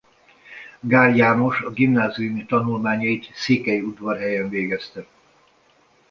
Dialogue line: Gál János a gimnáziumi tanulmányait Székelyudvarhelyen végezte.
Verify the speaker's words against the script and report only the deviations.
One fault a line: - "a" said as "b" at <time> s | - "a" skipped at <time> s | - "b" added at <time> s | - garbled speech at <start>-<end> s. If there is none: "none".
none